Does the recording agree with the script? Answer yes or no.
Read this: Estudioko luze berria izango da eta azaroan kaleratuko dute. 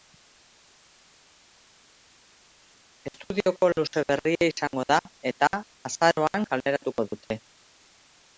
yes